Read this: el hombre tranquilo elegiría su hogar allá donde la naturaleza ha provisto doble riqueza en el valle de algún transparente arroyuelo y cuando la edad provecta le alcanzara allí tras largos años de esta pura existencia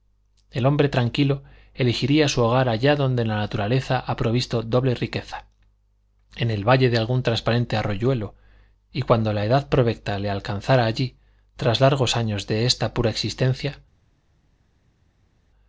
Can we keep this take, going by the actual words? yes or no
yes